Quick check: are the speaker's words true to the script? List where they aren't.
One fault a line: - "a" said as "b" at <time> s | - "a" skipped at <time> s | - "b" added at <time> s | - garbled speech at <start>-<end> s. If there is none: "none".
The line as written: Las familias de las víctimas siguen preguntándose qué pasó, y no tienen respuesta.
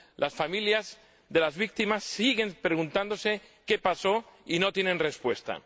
none